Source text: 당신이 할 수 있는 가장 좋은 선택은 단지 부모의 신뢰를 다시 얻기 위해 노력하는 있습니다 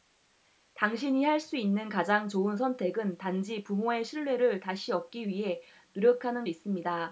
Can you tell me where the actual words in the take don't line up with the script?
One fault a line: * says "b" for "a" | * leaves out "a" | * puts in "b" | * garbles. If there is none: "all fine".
all fine